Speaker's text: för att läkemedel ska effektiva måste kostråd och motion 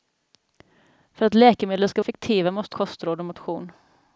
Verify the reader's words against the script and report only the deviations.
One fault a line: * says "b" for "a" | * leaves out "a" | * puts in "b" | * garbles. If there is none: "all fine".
all fine